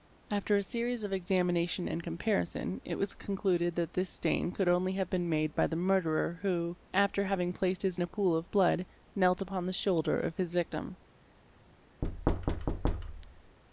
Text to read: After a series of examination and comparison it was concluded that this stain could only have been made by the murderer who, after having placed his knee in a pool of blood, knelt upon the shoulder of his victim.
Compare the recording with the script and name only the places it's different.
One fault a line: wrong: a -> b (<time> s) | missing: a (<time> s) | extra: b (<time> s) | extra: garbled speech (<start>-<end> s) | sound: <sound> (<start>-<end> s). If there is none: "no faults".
missing: knee (8.0 s)
sound: thud (12.0-13.6 s)